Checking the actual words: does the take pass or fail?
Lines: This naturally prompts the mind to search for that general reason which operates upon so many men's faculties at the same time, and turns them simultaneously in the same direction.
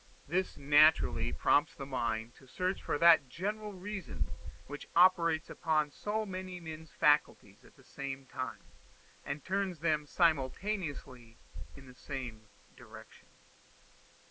pass